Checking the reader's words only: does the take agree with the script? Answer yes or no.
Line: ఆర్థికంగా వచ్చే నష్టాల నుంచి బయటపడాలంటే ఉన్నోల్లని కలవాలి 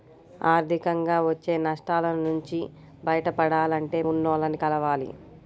yes